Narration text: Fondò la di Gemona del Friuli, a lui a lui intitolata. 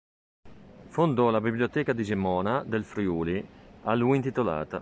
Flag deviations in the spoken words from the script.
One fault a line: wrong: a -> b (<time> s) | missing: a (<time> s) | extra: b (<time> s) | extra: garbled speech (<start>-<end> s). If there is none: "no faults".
extra: biblioteca (1.4 s)
missing: a lui (4.2 s)